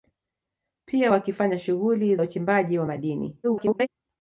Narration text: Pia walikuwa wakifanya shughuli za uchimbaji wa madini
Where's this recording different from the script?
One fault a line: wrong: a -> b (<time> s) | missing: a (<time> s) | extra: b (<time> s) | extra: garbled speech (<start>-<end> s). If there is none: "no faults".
missing: walikuwa (1.1 s)
missing: za (2.2 s)
extra: garbled speech (3.4-3.9 s)